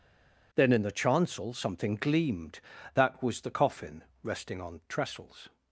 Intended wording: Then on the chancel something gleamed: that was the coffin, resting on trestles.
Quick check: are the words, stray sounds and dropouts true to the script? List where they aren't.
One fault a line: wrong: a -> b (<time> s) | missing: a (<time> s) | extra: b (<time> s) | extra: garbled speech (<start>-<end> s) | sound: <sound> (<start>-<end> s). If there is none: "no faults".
wrong: on -> in (0.7 s)